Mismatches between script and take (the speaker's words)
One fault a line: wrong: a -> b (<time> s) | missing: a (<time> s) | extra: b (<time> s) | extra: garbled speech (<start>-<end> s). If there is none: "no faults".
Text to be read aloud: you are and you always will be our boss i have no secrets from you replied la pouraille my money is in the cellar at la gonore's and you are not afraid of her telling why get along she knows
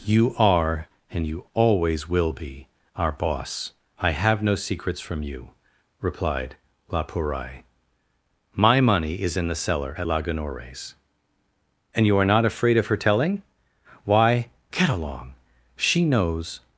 no faults